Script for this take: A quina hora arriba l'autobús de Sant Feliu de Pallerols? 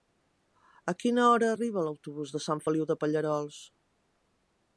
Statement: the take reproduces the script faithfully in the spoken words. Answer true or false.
true